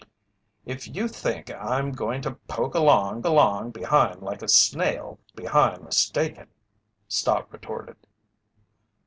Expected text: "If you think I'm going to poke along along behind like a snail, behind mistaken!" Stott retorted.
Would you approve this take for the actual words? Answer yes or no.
yes